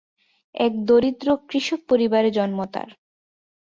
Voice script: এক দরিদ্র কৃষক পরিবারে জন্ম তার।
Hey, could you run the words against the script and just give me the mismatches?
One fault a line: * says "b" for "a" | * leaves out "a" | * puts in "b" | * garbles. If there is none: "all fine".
all fine